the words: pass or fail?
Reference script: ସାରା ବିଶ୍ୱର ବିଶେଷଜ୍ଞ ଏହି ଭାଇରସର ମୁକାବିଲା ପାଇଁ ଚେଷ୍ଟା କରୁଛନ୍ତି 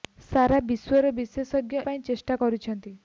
fail